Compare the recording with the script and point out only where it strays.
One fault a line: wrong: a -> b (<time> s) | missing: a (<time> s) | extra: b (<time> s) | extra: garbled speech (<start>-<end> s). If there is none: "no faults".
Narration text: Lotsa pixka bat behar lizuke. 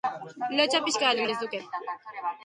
no faults